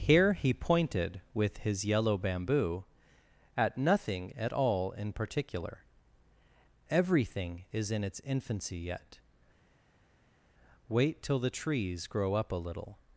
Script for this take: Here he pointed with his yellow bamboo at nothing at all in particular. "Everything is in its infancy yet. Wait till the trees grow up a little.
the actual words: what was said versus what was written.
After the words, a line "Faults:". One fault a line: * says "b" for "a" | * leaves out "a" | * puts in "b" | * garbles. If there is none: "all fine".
Here he pointed with his yellow bamboo at nothing at all in particular. "Everything is in its infancy yet. Wait till the trees grow up a little.
Faults:
all fine